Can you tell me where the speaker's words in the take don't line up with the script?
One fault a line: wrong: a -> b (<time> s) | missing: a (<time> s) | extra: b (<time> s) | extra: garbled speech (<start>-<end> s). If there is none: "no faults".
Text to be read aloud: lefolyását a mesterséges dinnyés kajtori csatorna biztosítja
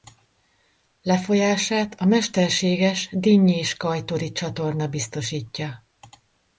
no faults